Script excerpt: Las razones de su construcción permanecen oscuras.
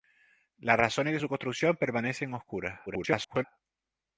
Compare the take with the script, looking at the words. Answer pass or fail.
fail